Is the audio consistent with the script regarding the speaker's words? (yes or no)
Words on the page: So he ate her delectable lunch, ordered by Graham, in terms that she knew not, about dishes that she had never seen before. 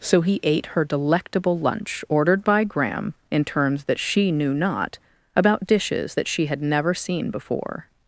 yes